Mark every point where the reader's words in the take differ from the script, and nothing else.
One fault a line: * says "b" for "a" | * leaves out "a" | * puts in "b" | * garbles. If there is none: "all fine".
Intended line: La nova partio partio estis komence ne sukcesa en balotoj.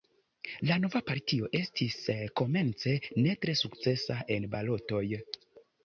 * leaves out "partio"
* puts in "tre"